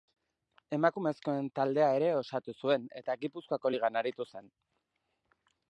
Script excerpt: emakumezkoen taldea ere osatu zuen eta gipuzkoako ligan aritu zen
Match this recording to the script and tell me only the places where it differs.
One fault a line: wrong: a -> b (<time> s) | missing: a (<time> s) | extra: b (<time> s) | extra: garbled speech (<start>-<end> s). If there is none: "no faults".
no faults